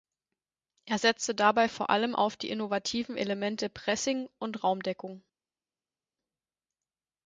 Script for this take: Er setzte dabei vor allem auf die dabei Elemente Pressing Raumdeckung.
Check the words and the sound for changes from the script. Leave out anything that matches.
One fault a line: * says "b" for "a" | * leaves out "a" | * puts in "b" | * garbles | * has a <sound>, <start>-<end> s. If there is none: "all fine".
* says "innovativen" for "dabei"
* puts in "und"